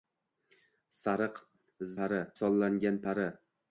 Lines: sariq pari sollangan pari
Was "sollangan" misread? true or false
false